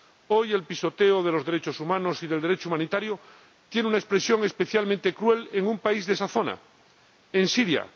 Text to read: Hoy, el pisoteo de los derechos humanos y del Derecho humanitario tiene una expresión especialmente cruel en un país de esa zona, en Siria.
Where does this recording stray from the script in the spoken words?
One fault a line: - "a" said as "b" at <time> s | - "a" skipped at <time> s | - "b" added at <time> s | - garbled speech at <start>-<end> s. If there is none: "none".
none